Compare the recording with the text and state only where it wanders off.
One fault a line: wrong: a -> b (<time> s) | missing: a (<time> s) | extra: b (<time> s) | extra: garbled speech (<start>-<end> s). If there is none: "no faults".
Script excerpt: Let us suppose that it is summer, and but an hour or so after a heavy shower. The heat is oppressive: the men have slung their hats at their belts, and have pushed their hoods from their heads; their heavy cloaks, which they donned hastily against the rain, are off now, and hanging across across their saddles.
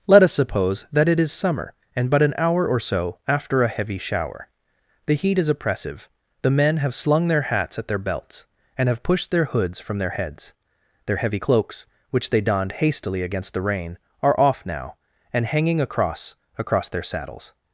no faults